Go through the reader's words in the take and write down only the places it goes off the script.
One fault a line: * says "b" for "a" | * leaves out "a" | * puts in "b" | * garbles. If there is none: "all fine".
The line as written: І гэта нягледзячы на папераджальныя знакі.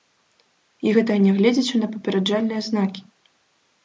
all fine